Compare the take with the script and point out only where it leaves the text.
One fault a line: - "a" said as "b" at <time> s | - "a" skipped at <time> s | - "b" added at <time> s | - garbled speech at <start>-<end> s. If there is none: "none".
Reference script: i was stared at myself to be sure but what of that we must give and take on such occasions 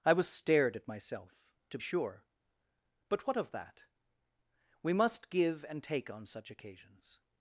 - "be" skipped at 1.8 s